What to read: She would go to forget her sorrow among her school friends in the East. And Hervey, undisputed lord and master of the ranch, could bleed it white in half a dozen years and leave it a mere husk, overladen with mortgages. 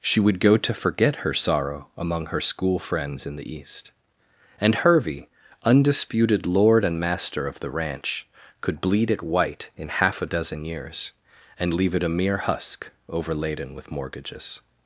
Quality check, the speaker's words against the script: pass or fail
pass